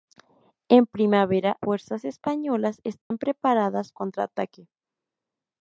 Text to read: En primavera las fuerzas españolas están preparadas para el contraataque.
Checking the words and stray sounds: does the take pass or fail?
fail